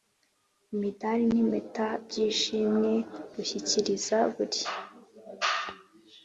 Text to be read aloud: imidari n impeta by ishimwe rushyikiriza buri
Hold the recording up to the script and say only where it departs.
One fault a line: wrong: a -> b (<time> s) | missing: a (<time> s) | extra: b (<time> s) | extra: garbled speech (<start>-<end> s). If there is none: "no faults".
no faults